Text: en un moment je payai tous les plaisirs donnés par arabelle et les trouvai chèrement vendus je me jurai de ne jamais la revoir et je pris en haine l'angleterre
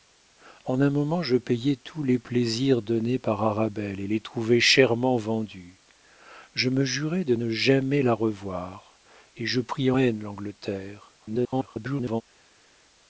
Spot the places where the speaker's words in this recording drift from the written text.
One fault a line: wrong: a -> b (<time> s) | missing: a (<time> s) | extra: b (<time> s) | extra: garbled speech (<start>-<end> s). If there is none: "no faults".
missing: en (9.9 s)
extra: garbled speech (11.2-12.2 s)